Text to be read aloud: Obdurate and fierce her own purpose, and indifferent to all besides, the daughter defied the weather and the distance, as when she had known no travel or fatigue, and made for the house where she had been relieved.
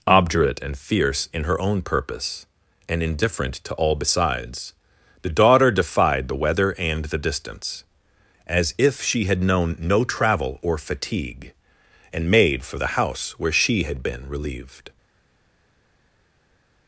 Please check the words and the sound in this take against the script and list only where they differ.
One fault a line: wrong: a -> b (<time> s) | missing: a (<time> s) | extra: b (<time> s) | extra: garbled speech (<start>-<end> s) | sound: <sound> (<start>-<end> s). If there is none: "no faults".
extra: in (1.3 s)
wrong: when -> if (8.8 s)